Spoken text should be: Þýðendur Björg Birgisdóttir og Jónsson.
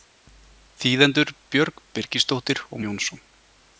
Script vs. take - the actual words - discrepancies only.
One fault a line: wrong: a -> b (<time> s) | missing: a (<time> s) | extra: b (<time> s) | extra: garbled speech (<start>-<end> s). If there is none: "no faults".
no faults